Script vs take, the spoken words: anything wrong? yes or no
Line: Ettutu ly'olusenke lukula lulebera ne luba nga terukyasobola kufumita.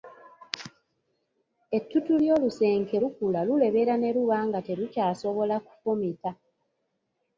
no